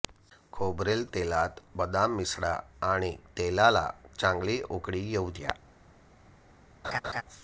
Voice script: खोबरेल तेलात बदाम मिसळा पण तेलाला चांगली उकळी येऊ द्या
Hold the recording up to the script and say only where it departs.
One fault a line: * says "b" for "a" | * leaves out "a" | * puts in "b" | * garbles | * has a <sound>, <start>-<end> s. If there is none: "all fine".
* says "आणि" for "पण"
* has a laugh, 6.8-7.2 s